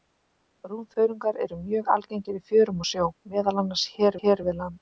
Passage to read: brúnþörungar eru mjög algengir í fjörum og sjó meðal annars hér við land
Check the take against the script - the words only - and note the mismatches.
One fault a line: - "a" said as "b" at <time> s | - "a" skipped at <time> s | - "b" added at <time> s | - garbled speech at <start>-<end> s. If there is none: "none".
- "hér" added at 4.2 s